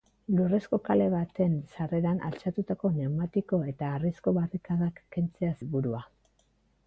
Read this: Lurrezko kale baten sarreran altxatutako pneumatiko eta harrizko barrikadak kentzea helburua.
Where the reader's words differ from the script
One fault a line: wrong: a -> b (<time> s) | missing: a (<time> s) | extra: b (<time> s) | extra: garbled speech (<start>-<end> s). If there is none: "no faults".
no faults